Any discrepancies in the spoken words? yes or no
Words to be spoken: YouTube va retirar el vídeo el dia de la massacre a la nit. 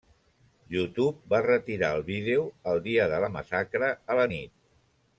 no